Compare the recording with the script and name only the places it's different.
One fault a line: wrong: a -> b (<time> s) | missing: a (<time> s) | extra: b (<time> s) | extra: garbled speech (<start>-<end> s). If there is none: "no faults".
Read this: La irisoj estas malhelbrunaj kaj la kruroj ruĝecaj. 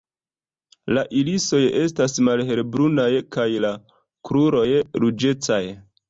no faults